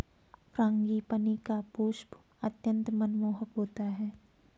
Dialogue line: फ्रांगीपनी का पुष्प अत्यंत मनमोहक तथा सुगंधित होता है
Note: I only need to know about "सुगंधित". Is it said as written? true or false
false